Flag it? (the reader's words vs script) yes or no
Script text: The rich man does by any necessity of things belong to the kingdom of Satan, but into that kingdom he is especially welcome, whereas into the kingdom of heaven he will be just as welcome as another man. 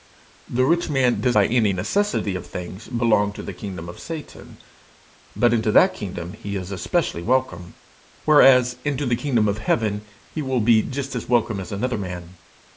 no